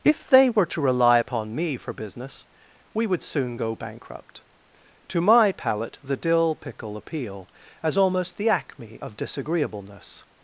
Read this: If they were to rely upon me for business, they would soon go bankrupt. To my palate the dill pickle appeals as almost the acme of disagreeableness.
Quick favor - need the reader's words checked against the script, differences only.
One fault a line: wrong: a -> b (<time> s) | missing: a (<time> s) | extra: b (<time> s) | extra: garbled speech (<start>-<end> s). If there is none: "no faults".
wrong: they -> we (2.9 s)
wrong: appeals -> appeal (7.0 s)